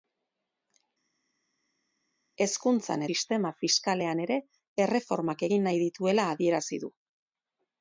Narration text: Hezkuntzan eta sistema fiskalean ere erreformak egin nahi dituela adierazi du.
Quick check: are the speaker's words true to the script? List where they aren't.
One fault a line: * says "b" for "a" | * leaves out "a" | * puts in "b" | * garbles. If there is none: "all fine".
* leaves out "eta"